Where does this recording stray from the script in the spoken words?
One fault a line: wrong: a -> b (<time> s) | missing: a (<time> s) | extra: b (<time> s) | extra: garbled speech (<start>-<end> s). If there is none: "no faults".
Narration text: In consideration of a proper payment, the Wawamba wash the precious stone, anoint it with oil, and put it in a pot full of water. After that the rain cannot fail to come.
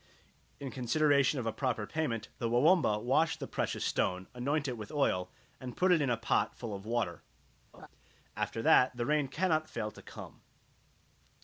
no faults